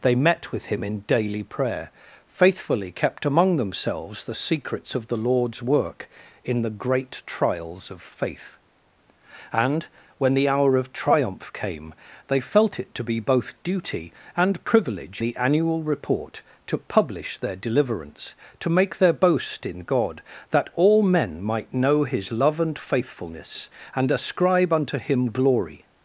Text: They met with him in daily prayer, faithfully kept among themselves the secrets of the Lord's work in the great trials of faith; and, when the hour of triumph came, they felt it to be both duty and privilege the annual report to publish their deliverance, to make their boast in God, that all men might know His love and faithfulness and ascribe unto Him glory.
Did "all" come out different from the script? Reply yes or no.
no